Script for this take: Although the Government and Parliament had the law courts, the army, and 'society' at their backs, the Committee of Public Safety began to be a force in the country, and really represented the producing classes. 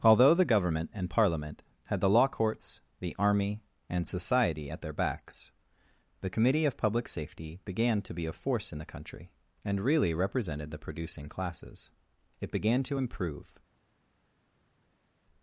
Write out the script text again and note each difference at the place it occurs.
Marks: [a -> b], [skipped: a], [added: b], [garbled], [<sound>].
Although the Government and Parliament had the law courts, the army, and 'society' at their backs, the Committee of Public Safety began to be a force in the country, and really represented the producing classes. [added: It began to improve]